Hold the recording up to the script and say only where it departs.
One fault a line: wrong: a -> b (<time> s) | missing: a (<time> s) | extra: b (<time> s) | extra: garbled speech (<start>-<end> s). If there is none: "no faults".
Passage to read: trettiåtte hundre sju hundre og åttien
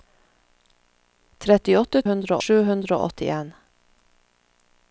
no faults